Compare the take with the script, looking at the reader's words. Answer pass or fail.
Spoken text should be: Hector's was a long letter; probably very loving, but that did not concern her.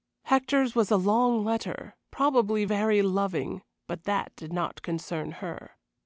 pass